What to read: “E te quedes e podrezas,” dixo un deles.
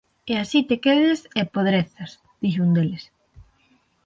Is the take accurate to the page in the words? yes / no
no